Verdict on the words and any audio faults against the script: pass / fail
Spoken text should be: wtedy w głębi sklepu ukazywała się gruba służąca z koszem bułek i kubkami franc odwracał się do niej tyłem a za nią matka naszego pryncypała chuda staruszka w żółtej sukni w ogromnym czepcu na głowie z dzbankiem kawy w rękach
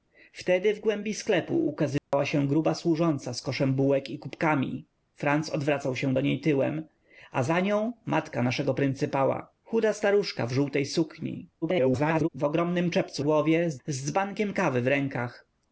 fail